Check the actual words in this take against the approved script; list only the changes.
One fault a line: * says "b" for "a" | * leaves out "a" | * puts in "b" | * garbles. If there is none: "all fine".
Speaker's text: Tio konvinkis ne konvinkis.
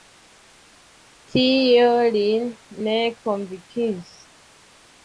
* says "lin" for "konvinkis"